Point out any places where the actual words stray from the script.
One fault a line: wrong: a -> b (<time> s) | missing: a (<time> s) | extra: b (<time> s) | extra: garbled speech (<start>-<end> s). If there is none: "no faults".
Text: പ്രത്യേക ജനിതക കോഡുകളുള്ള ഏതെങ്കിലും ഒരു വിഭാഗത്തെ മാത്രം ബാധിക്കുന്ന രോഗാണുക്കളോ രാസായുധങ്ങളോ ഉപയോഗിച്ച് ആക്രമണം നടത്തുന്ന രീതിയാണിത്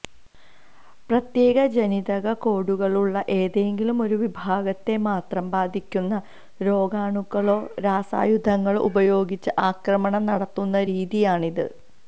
no faults